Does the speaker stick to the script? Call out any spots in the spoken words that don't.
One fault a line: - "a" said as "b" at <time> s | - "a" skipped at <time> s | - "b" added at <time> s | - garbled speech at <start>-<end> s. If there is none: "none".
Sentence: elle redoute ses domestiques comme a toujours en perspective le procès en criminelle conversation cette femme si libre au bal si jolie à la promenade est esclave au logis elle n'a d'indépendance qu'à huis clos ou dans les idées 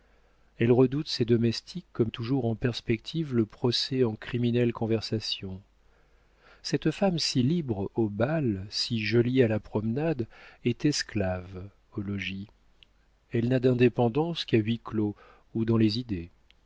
none